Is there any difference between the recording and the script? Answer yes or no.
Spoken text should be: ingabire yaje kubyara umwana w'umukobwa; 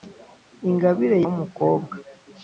yes